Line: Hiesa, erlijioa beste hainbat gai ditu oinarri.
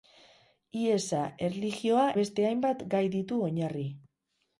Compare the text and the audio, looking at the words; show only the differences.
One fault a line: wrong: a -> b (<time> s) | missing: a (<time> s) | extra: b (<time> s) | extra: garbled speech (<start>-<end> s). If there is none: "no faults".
no faults